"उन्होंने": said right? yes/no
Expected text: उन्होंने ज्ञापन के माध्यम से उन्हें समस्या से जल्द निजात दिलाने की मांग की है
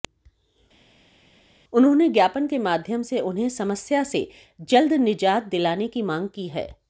yes